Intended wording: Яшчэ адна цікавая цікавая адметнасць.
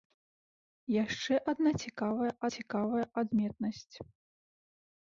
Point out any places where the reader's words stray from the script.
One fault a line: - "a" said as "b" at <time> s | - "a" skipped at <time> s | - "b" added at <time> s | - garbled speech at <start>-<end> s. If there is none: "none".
none